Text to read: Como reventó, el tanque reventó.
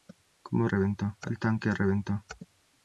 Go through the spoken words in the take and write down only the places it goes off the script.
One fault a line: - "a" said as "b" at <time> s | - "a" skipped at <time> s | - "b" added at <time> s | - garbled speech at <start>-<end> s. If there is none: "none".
none